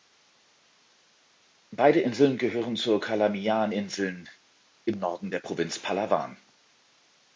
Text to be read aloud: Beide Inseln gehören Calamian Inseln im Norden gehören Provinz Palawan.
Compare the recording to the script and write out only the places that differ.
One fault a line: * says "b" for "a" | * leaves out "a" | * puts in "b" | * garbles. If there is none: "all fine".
* puts in "zur"
* says "der" for "gehören"